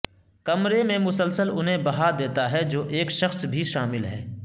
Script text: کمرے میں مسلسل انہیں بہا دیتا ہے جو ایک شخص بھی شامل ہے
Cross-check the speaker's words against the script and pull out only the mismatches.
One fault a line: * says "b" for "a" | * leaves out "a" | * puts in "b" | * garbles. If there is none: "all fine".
all fine